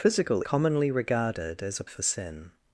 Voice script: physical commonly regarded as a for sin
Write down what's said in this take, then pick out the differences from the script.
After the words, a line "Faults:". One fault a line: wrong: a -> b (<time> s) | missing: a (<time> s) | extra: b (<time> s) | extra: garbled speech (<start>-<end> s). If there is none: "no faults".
physical commonly regarded as a for sin
Faults:
no faults